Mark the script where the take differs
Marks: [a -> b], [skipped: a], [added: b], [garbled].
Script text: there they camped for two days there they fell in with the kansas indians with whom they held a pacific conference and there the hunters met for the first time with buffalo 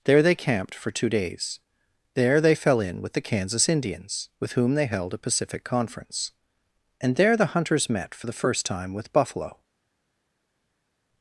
there they camped for two days there they fell in with the kansas indians with whom they held a pacific conference and there the hunters met for the first time with buffalo